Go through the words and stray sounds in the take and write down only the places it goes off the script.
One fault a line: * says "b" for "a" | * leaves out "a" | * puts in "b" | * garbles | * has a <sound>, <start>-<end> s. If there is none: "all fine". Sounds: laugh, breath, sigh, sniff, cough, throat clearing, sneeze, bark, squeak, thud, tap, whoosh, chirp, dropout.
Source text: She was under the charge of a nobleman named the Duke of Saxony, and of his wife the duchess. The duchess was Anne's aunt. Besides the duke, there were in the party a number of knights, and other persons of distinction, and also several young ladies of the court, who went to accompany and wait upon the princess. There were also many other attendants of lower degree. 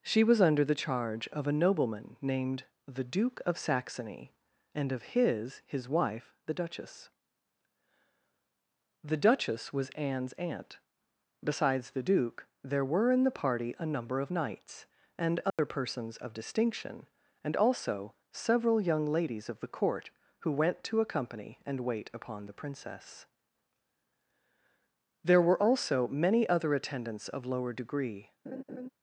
* puts in "his"
* has a dropout, 15.5-15.6 s
* has a laugh, 28.4-28.9 s